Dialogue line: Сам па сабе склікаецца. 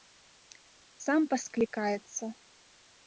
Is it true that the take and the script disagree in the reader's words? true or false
true